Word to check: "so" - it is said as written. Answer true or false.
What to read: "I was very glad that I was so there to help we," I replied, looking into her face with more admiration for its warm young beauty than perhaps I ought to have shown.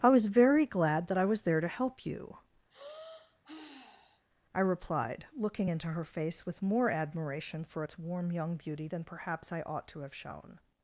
false